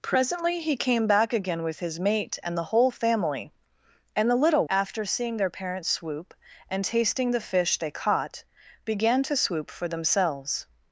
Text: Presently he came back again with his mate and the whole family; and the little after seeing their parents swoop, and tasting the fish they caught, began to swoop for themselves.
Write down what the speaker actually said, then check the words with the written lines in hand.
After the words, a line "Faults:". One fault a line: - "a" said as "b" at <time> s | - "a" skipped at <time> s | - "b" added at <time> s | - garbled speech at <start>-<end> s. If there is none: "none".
Presently he came back again with his mate and the whole family; and the little after seeing their parents swoop, and tasting the fish they caught, began to swoop for themselves.
Faults:
none